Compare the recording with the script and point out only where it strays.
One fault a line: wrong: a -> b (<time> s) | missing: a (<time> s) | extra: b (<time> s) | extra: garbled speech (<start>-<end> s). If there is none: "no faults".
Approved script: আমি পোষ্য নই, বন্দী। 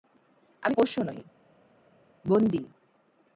no faults